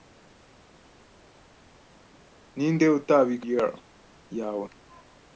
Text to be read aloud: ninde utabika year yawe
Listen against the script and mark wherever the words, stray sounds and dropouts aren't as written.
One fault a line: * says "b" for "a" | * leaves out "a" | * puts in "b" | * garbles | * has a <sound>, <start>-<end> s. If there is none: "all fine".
all fine